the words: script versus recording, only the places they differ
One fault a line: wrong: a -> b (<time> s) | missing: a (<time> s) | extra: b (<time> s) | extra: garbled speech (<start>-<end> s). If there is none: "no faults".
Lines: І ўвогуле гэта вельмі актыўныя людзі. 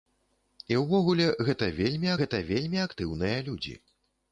extra: гэта вельмі (2.2 s)